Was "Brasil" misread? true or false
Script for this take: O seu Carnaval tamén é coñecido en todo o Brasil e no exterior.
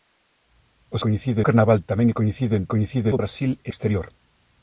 false